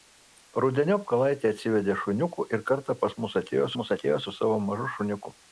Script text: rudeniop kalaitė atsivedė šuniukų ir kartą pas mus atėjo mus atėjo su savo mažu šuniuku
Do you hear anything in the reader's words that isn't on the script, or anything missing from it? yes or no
no